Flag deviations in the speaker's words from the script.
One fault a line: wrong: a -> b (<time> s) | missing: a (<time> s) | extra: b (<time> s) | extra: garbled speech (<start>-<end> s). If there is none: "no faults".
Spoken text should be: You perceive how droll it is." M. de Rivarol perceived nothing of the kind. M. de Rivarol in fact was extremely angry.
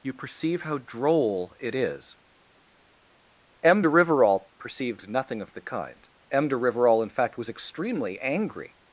no faults